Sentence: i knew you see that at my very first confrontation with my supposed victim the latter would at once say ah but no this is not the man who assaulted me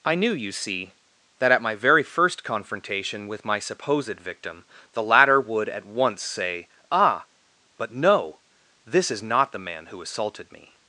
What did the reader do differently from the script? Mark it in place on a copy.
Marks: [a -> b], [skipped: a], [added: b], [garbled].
i knew you see that at my very first confrontation with my supposed victim the latter would at once say ah but no this is not the man who assaulted me